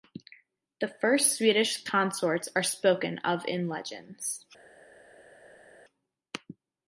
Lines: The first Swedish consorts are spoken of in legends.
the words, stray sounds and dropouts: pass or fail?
pass